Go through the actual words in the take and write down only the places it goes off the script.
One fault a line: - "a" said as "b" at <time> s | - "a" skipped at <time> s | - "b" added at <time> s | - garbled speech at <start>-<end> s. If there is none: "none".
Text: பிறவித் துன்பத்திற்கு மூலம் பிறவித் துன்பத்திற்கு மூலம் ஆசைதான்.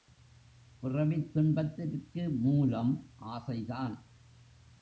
- "பிறவித் துன்பத்திற்கு மூலம்" skipped at 3.1 s